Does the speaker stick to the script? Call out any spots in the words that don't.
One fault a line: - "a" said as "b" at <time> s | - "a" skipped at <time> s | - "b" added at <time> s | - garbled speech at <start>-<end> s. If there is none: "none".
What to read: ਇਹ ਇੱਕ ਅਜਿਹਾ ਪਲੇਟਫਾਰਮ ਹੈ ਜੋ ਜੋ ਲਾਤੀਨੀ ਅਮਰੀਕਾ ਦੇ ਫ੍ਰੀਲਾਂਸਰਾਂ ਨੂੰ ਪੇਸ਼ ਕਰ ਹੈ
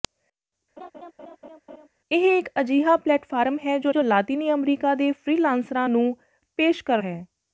none